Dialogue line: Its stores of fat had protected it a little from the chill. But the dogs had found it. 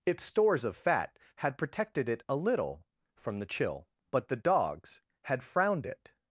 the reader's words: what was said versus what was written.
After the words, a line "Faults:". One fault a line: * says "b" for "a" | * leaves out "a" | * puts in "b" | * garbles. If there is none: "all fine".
Its stores of fat had protected it a little from the chill. But the dogs had frowned it.
Faults:
* says "frowned" for "found"